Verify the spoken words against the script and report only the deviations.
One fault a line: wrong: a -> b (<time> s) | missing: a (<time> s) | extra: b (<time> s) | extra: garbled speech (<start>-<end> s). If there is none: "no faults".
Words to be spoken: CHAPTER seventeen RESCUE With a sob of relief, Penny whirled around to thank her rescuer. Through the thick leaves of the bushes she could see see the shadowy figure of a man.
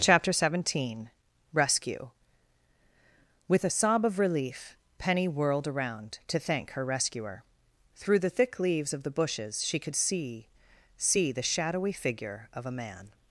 no faults